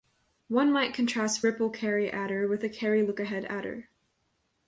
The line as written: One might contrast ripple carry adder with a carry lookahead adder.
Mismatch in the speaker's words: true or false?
false